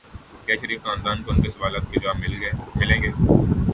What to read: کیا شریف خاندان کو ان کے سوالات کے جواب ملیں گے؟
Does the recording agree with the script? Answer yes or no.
yes